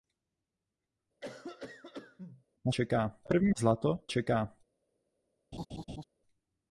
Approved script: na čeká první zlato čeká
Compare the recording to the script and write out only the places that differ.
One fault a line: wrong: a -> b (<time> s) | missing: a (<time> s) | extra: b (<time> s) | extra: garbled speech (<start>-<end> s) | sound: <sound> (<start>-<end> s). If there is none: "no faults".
sound: cough (1.2-2.4 s)
sound: laugh (5.5-6.0 s)